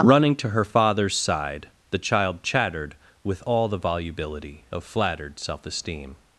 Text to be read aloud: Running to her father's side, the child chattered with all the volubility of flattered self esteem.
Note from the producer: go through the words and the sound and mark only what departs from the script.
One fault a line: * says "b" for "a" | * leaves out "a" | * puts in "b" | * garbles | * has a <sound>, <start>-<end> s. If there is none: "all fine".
all fine